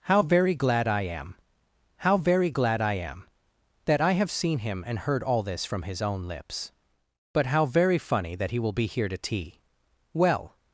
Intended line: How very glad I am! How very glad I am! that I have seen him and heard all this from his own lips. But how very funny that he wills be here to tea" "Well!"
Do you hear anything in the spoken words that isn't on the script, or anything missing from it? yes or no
yes